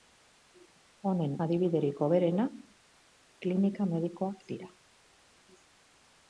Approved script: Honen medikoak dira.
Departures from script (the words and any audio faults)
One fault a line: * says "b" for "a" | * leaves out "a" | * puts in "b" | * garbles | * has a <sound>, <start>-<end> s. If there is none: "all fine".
* puts in "adibiderik hoberena klinika"